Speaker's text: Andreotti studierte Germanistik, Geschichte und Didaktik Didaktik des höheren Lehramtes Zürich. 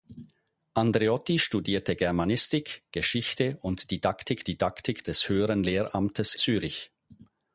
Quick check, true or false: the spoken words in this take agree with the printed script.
true